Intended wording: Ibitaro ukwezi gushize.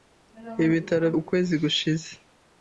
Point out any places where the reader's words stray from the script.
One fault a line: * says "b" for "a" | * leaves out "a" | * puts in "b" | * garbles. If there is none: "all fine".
all fine